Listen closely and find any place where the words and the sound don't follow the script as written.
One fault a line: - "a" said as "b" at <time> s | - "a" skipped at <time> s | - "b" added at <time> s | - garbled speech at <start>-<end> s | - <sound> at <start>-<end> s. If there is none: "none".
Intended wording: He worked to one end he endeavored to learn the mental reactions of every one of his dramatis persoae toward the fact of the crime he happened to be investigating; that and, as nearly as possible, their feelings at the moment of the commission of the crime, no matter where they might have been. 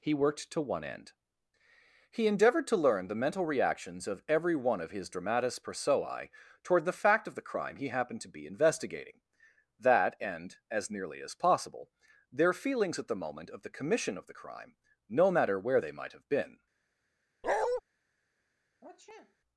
- bark at 17.4-17.8 s
- sniff at 18.8-19.4 s